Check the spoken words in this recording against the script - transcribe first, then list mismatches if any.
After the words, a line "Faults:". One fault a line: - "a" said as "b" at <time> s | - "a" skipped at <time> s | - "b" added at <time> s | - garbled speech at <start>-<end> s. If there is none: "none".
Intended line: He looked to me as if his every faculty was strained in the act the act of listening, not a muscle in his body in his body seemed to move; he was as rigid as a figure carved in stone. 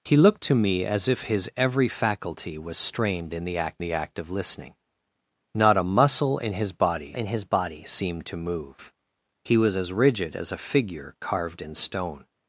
He looked to me as if his every faculty was strained in the act the act of listening, not a muscle in his body in his body seemed to move; he was as rigid as a figure carved in stone.
Faults:
none